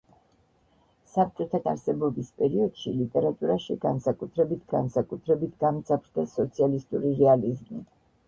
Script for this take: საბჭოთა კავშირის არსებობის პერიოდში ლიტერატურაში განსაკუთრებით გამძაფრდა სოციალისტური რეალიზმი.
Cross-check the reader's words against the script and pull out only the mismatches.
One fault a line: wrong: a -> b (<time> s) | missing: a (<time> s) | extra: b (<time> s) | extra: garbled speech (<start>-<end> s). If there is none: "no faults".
missing: კავშირის (1.6 s)
extra: განსაკუთრებით (4.8 s)